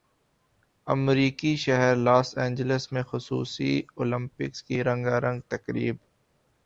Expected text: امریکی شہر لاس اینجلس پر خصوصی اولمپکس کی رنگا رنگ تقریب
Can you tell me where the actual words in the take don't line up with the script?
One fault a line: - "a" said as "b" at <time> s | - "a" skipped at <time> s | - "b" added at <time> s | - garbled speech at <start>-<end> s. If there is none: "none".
- "پر" said as "میں" at 2.9 s